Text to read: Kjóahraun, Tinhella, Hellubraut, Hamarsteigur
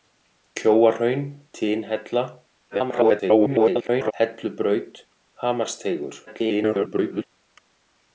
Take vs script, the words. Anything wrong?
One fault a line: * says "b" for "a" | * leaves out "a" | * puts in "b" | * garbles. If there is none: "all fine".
* garbles
* garbles